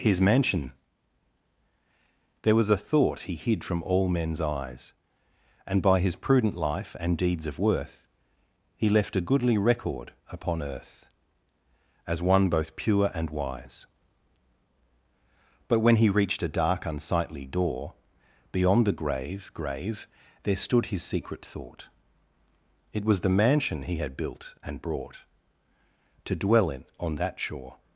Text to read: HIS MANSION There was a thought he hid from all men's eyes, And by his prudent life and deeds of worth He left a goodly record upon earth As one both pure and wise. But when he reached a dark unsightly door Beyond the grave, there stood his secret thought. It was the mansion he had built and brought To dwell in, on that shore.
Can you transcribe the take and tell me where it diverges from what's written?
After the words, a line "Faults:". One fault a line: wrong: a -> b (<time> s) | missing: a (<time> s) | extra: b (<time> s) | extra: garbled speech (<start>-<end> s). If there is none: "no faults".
HIS MANSION There was a thought he hid from all men's eyes, And by his prudent life and deeds of worth He left a goodly record upon earth As one both pure and wise. But when he reached a dark unsightly door Beyond the grave grave, there stood his secret thought. It was the mansion he had built and brought To dwell in, on that shore.
Faults:
extra: grave (19.5 s)